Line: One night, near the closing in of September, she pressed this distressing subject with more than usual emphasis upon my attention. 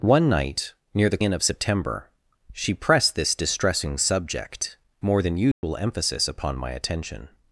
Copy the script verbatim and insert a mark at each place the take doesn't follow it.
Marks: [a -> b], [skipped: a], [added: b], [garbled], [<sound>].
One night, near the [skipped: closing] in of September, she pressed this distressing subject [skipped: with] more than usual [dropout] emphasis upon my attention.